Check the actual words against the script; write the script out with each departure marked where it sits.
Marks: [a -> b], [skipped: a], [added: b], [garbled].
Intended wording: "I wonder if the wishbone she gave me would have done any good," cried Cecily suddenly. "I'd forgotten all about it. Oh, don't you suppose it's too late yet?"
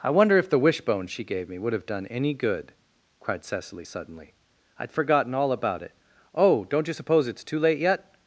"I wonder if the wishbone she gave me would have done any good," cried Cecily suddenly. "I'd forgotten all about it. Oh, don't you suppose it's too late yet?"